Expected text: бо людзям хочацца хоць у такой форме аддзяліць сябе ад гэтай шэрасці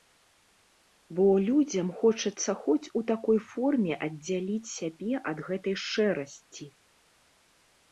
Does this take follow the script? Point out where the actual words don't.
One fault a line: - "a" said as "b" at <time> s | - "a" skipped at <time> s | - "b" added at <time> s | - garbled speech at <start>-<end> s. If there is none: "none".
none